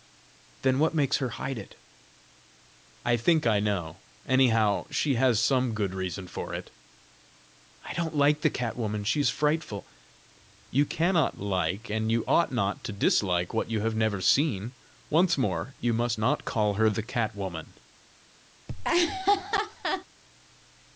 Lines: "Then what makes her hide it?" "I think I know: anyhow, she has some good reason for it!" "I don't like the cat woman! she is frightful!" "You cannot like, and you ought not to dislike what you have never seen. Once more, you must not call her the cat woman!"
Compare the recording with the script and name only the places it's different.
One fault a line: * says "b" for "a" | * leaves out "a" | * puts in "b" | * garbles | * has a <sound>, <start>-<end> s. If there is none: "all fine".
* has a laugh, 18.7-20.0 s